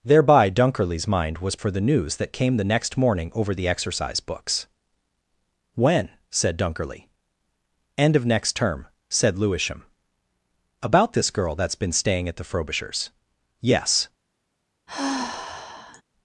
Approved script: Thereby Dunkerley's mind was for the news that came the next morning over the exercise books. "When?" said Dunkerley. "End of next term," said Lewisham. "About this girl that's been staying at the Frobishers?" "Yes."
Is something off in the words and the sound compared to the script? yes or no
yes